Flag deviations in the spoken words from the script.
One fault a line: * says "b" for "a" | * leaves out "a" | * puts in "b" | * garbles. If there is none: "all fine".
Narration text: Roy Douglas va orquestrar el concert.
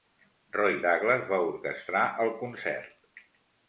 all fine